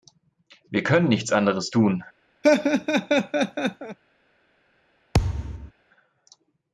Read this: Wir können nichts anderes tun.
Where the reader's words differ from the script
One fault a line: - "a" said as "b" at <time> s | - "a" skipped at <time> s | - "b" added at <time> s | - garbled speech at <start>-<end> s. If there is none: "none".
none